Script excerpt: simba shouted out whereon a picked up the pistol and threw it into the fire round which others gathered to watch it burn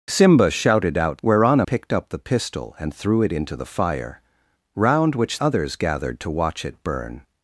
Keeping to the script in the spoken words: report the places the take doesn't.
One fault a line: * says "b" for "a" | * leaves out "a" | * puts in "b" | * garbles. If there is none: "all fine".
all fine